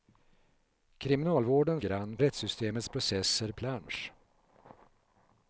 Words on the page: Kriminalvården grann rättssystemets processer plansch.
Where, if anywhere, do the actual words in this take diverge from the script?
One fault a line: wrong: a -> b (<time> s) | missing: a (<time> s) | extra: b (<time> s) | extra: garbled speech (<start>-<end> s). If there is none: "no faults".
no faults